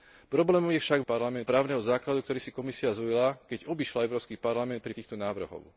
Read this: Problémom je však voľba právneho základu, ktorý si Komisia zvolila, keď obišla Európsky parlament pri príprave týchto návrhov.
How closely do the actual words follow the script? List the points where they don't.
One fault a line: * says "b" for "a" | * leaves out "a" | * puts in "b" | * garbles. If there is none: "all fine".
* says "parlament" for "voľba"
* leaves out "príprave"